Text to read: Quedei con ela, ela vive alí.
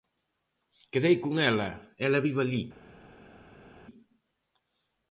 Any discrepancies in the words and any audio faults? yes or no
no